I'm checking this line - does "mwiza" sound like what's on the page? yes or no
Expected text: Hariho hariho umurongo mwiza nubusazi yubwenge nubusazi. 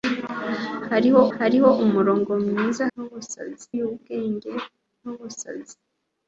yes